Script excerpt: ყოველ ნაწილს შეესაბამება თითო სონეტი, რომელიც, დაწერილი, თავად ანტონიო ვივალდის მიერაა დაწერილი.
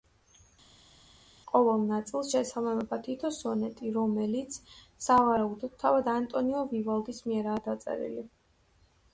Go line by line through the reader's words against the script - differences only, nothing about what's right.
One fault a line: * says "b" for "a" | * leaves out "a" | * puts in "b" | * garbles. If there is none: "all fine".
* says "სავარაუდოდ" for "დაწერილი"